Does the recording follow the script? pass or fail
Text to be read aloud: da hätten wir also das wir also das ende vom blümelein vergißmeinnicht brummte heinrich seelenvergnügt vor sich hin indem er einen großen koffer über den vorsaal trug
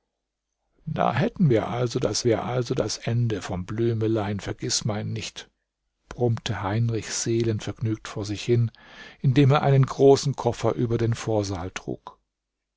pass